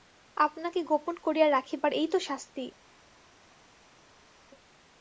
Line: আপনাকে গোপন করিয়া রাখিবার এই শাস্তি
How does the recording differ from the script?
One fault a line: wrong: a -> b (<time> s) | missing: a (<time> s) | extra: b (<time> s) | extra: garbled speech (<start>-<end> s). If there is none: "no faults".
extra: তো (2.1 s)